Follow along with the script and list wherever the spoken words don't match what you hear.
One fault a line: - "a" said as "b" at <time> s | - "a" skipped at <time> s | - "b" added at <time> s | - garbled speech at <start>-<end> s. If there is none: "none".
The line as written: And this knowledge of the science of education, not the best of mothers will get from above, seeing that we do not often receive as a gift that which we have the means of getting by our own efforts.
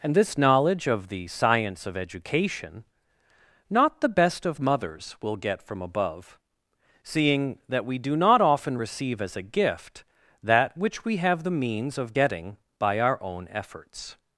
none